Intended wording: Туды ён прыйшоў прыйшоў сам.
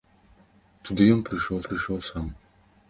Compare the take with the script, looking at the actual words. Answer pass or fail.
pass